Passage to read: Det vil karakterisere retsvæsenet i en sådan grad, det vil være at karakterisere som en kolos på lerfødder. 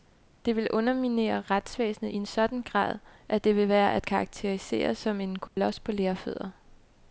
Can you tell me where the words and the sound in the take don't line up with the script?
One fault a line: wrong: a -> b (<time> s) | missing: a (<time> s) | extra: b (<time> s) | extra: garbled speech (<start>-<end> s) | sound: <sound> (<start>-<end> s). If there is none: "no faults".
wrong: karakterisere -> underminere (0.7 s)
extra: at (3.3 s)
sound: dropout (5.5-5.6 s)